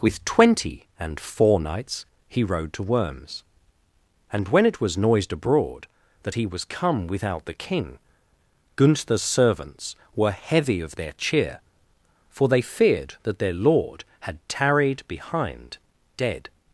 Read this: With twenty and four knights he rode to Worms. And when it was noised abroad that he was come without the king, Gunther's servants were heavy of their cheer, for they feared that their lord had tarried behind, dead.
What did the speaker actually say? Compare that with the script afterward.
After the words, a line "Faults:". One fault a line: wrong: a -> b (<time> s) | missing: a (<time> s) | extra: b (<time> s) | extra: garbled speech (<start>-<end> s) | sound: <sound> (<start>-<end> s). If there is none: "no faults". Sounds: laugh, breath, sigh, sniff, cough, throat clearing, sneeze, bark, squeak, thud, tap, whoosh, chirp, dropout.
With twenty and four knights he rode to Worms. And when it was noised abroad that he was come without the king, Gunther's servants were heavy of their cheer, for they feared that their lord had tarried behind, dead.
Faults:
no faults